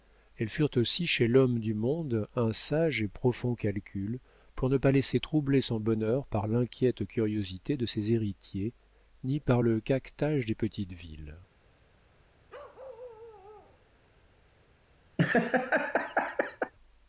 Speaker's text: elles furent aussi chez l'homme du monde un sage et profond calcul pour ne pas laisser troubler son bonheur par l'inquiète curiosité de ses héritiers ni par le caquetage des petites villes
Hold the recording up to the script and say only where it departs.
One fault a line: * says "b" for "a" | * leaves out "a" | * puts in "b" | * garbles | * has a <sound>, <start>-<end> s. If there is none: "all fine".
* has a bark, 12.5-13.8 s
* has a laugh, 15.2-16.7 s